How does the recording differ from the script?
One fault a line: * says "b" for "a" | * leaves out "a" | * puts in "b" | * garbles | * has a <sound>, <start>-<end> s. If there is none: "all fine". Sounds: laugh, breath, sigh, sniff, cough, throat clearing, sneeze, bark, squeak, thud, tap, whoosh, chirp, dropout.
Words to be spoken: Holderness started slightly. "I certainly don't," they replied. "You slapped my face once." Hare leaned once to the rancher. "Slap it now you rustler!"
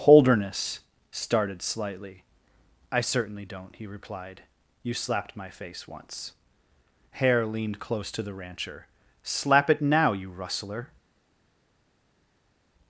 * says "he" for "they"
* says "close" for "once"